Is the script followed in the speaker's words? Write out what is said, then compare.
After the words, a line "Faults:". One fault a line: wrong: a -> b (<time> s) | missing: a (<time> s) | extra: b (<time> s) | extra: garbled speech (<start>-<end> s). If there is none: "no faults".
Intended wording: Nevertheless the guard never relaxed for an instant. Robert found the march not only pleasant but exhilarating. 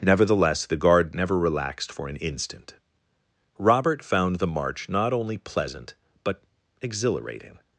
Nevertheless the guard never relaxed for an instant. Robert found the march not only pleasant but exhilarating.
Faults:
no faults